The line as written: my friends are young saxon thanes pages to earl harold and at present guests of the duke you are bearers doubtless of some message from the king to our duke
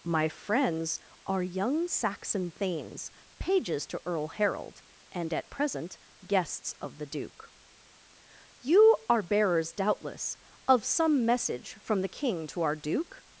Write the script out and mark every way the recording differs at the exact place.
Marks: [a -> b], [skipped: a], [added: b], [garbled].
my friends are young saxon thanes pages to earl harold and at present guests of the duke you are bearers doubtless of some message from the king to our duke